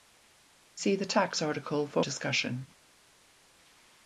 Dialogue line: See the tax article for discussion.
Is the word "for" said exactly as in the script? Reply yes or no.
yes